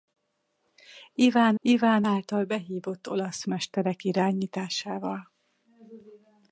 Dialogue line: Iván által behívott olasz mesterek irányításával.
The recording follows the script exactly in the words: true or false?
false